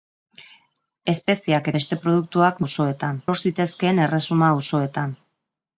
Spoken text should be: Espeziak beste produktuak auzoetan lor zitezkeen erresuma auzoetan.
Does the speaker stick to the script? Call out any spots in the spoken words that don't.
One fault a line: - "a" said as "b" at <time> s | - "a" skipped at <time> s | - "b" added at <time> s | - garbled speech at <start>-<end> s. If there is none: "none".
none